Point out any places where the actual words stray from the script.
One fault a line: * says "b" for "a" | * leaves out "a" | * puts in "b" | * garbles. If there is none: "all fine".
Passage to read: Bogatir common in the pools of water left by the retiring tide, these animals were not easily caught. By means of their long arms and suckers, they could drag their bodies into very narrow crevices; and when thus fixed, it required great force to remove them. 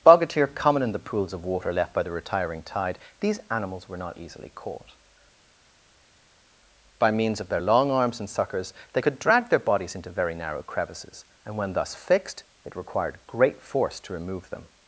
all fine